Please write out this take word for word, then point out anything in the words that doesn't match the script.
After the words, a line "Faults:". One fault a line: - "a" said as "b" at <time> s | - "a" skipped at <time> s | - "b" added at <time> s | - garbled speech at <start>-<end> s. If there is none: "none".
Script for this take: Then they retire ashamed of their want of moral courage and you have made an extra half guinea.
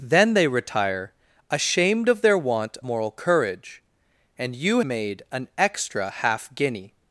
Then they retire ashamed of their want moral courage and you made an extra half guinea.
Faults:
- "of" skipped at 2.8 s
- "have" skipped at 4.8 s